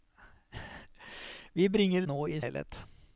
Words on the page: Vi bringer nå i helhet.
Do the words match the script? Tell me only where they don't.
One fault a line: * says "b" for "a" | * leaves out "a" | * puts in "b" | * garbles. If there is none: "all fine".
all fine